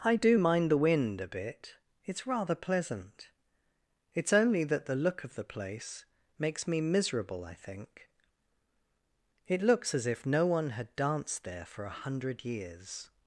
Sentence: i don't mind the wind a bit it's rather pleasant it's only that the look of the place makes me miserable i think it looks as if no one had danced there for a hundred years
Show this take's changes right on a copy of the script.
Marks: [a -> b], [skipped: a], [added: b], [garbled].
i [don't -> do] mind the wind a bit it's rather pleasant it's only that the look of the place makes me miserable i think it looks as if no one had danced there for a hundred years